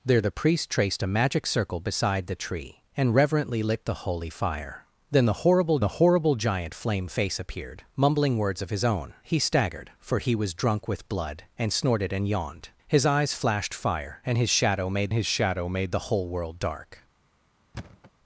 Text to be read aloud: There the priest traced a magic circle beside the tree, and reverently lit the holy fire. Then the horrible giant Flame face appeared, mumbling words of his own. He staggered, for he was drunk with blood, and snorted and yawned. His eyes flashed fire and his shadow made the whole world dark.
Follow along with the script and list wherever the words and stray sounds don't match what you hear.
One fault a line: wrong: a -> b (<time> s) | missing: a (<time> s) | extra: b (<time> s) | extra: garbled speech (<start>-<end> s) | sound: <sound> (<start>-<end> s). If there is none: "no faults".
extra: the horrible (5.8 s)
extra: his shadow made (15.1 s)
sound: thud (17.7-18.1 s)